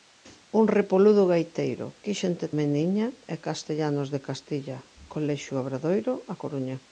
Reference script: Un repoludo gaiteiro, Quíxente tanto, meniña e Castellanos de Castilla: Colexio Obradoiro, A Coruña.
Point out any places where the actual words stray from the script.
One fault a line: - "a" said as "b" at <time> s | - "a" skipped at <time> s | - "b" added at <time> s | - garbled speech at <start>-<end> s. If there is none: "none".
- "tanto" skipped at 2.5 s